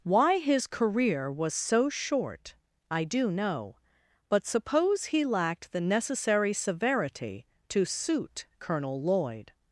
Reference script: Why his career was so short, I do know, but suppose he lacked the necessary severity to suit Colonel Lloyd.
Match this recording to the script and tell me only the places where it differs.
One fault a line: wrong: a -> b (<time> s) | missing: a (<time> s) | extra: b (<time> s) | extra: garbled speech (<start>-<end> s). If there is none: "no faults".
no faults